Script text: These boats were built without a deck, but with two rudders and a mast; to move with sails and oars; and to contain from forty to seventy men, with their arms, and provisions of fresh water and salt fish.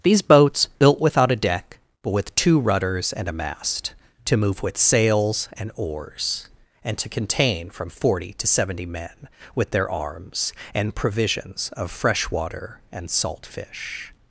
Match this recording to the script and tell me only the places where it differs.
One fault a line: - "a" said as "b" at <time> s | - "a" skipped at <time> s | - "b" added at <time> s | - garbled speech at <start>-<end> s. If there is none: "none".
- "were" skipped at 0.7 s